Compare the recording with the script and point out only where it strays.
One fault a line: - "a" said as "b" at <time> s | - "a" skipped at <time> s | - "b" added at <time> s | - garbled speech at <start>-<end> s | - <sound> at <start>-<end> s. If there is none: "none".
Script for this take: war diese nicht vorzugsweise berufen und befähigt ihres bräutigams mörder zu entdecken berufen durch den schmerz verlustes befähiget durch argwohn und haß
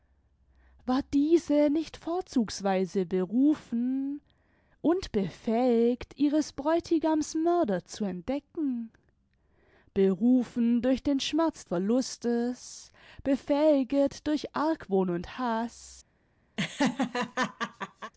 - laugh at 16.6-18.1 s